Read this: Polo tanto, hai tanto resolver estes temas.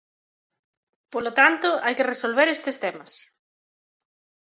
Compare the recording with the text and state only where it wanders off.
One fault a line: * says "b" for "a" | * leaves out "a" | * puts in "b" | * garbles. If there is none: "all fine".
* says "que" for "tanto"